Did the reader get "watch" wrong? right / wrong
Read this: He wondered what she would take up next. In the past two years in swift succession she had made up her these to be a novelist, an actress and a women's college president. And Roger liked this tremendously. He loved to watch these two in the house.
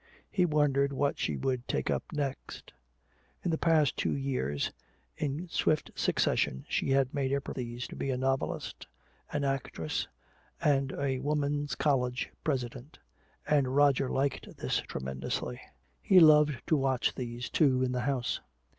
right